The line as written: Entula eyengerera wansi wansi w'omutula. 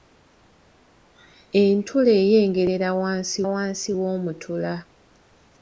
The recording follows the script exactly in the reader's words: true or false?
true